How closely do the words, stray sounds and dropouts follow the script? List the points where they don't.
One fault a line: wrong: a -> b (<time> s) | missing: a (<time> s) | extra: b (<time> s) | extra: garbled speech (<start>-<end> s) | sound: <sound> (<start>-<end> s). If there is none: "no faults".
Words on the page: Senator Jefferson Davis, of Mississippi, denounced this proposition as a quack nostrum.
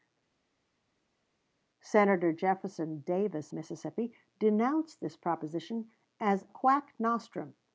missing: of (3.5 s)
missing: a (6.5 s)